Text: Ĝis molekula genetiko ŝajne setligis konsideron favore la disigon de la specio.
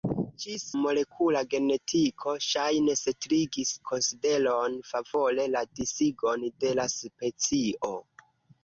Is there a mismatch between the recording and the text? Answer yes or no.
no